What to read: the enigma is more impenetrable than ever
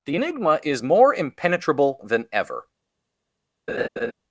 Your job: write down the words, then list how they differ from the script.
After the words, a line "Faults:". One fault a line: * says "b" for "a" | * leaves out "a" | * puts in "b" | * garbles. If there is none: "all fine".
the enigma is more impenetrable than ever
Faults:
all fine